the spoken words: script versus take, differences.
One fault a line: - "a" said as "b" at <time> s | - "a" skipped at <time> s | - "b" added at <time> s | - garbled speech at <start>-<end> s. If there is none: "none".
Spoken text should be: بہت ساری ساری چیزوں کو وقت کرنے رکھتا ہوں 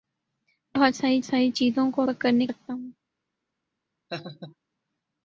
none